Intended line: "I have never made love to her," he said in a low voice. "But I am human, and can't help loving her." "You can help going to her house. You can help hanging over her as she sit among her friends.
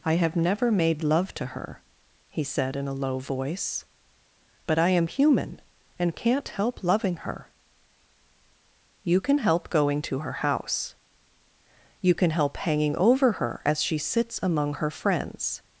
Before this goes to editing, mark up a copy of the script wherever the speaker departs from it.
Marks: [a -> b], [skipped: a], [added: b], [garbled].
"I have never made love to her," he said in a low voice. "But I am human, and can't help loving her." "You can help going to her house. You can help hanging over her as she [sit -> sits] among her friends.